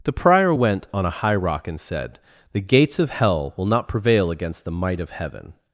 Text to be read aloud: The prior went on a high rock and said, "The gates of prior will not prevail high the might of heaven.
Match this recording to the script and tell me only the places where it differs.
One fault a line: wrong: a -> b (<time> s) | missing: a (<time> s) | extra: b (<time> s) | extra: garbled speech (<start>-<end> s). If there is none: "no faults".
wrong: prior -> hell (3.1 s)
wrong: high -> against (4.3 s)